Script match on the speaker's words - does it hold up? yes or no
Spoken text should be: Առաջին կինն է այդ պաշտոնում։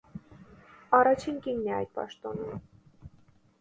yes